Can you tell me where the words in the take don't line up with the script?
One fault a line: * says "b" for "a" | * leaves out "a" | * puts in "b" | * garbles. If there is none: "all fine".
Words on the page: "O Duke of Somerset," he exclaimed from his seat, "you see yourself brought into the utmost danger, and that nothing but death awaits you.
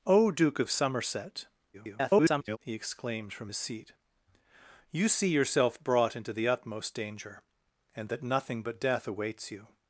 * garbles